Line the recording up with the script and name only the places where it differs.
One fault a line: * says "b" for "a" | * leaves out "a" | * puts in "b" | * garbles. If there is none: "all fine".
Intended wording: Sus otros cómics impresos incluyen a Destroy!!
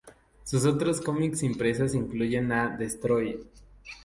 all fine